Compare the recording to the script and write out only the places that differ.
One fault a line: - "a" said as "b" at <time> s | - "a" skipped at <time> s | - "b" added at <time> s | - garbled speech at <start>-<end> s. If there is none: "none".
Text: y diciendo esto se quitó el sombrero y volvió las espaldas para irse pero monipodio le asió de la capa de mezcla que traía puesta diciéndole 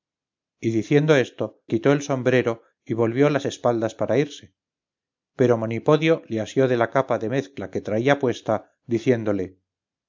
- "se" skipped at 1.6 s